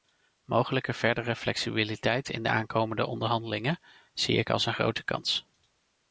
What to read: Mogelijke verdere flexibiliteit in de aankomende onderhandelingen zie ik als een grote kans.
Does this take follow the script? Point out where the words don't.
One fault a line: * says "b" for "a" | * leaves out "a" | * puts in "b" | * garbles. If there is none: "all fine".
all fine